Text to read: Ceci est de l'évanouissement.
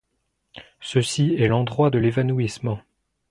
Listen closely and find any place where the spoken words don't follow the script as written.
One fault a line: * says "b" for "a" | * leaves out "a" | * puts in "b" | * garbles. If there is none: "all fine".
* puts in "l'endroit"